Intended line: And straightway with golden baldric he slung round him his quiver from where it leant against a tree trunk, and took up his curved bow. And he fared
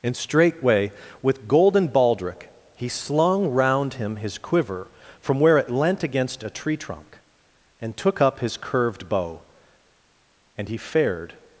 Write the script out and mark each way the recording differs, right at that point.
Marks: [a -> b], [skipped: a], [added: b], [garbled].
And straightway with golden baldric he slung round him his quiver from where it leant against a tree trunk, and took up his curved bow. And he fared